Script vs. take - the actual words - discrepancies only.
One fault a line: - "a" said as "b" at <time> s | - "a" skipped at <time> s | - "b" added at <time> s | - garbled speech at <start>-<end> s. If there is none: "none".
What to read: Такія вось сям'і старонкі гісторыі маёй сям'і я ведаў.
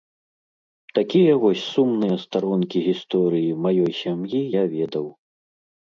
- "сям'і" said as "сумныя" at 1.7 s